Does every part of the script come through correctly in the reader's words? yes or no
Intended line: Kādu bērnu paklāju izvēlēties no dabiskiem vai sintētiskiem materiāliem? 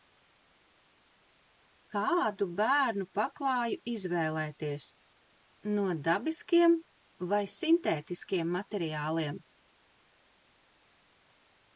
yes